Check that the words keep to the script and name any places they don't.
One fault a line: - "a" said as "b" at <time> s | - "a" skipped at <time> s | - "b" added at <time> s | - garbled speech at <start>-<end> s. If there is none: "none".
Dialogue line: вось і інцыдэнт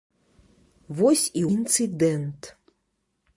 none